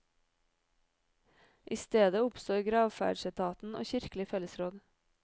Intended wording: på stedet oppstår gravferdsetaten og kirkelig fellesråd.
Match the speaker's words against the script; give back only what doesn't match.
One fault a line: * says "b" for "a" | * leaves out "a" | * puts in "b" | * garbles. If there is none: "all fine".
* says "I" for "på"